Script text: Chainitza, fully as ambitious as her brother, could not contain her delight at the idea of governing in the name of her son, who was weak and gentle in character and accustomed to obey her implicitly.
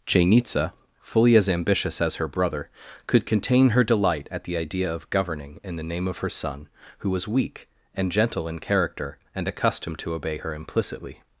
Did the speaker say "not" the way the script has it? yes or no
no